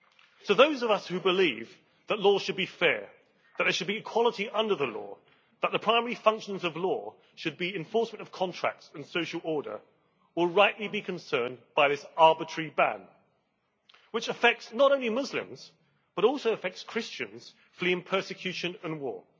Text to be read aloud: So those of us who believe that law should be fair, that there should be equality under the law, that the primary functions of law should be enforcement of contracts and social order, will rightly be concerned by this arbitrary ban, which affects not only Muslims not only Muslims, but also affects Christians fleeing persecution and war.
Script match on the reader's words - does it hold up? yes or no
no